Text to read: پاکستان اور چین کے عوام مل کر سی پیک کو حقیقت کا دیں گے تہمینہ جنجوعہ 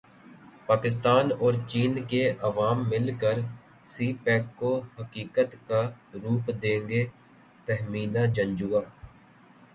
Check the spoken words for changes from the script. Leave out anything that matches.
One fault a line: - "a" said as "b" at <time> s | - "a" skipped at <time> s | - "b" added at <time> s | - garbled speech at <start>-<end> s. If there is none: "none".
- "روپ" added at 6.1 s